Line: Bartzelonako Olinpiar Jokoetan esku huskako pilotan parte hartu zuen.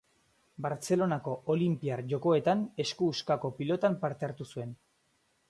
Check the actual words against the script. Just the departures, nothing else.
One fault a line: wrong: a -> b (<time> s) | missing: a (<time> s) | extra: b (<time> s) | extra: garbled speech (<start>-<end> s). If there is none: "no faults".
no faults